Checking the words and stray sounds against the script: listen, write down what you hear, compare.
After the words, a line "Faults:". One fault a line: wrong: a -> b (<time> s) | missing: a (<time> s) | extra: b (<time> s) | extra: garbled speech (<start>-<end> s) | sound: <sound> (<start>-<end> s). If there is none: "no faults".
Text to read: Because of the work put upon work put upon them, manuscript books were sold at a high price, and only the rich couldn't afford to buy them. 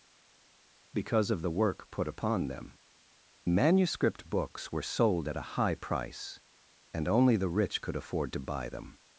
Because of the work put upon them, manuscript books were sold at a high price, and only the rich could afford to buy them.
Faults:
missing: work put upon (2.5 s)
wrong: couldn't -> could (7.8 s)